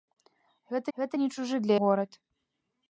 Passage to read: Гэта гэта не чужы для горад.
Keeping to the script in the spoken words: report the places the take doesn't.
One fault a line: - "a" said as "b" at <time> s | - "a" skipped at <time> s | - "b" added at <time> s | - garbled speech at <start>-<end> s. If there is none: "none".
none